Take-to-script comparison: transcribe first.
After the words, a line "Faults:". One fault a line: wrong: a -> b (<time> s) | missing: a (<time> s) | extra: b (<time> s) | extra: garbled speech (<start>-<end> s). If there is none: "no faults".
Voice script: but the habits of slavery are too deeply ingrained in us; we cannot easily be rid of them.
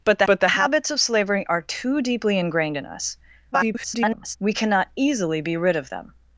but the but the habits of slavery are too deeply ingrained in us; [garbled] we cannot easily be rid of them.
Faults:
extra: but the (0.2 s)
extra: garbled speech (3.5-4.4 s)